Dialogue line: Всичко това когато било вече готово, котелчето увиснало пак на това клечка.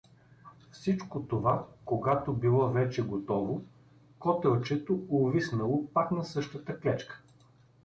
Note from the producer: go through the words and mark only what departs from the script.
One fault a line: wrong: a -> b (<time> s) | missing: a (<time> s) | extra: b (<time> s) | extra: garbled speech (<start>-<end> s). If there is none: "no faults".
wrong: това -> същата (6.2 s)